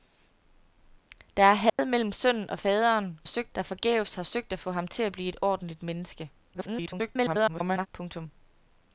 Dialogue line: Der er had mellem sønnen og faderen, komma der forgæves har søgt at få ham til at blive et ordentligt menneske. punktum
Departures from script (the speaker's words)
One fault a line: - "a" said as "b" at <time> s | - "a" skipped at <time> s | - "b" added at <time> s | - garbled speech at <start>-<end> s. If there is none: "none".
- "komma" said as "søgt" at 3.2 s
- garbled speech at 6.5-7.9 s